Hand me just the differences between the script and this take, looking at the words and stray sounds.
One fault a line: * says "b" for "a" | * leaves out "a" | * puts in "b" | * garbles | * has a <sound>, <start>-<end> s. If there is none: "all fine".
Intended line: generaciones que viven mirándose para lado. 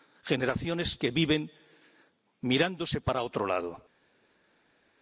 * puts in "otro"